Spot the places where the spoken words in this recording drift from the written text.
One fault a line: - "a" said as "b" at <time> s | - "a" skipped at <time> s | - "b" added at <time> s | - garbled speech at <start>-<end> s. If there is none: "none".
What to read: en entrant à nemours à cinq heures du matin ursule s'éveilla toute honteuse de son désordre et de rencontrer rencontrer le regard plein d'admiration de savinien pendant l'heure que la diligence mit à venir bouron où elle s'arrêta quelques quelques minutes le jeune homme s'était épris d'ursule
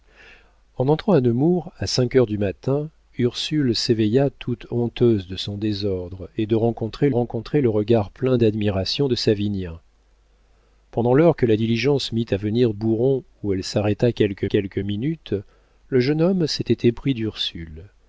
none